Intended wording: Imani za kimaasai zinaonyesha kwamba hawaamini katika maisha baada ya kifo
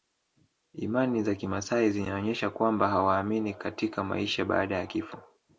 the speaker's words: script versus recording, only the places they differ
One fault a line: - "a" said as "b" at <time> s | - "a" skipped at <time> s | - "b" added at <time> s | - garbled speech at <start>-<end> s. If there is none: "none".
none